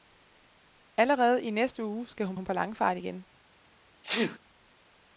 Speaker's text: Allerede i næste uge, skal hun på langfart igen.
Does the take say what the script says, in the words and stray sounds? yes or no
no